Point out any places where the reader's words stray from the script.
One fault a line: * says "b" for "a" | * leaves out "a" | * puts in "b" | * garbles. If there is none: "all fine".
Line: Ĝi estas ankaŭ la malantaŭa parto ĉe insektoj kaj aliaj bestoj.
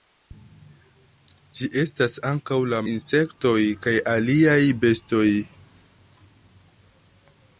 * leaves out "malantaŭa parto ĉe"